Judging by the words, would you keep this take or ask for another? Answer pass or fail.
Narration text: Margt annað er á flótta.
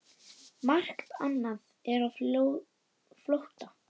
pass